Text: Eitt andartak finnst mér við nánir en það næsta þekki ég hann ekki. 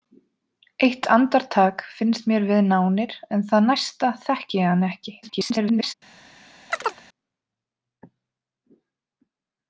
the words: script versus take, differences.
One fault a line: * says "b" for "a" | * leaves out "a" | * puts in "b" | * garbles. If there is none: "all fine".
* garbles